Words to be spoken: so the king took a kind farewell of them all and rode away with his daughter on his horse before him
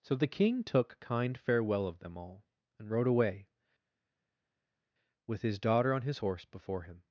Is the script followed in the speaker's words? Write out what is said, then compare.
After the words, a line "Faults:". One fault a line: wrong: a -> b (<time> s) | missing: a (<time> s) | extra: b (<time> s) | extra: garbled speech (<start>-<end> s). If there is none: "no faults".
so the king took kind farewell of them all and rode away with his daughter on his horse before him
Faults:
missing: a (1.0 s)